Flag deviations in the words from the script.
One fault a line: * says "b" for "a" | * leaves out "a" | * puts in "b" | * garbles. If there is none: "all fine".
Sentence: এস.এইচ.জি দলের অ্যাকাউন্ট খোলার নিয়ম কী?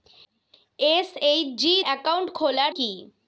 * leaves out "দলের"
* leaves out "নিয়ম"